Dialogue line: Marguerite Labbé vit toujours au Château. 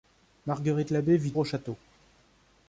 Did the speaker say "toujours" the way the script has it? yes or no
no